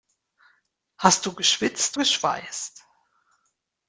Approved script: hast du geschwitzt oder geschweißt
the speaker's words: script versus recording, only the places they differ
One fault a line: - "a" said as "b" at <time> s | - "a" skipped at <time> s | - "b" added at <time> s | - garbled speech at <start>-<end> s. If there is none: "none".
- "oder" skipped at 2.0 s